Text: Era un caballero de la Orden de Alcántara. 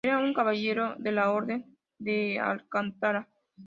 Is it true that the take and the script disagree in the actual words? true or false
false